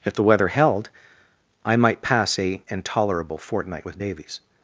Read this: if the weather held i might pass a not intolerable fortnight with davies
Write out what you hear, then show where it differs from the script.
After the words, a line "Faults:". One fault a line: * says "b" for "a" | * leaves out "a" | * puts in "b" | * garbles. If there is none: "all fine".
if the weather held i might pass a intolerable fortnight with davies
Faults:
* leaves out "not"